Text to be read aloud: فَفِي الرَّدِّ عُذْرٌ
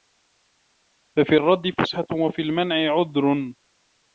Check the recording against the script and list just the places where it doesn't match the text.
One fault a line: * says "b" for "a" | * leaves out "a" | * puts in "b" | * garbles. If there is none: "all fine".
* puts in "فُسْحَةٌ وَفِي الْمَنْعِ"